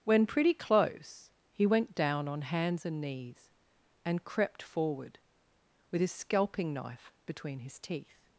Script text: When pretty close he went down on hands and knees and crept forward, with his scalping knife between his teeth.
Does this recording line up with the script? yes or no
yes